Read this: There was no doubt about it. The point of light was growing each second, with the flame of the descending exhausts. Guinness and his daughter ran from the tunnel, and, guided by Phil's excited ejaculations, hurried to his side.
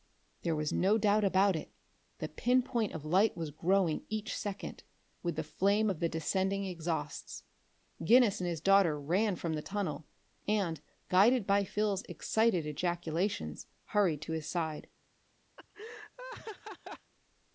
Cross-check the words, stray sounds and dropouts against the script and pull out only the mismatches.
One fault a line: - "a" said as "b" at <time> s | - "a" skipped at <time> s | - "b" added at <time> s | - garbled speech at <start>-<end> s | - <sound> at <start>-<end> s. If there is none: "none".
- "pin" added at 2.3 s
- laugh at 15.6-17.1 s